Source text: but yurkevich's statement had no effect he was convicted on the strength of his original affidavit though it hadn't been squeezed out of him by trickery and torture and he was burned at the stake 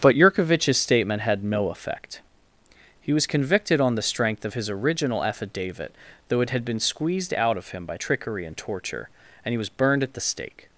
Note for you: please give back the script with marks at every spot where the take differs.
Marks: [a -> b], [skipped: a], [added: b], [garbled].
but yurkevich's statement had no effect he was convicted on the strength of his original affidavit though it [hadn't -> had] been squeezed out of him by trickery and torture and he was burned at the stake